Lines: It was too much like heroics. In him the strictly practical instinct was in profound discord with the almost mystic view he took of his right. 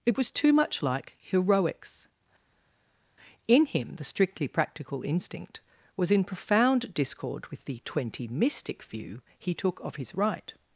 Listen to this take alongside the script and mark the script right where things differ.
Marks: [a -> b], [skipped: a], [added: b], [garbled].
It was too much like heroics. In him the strictly practical instinct was in profound discord with the [almost -> twenty] mystic view he took of his right.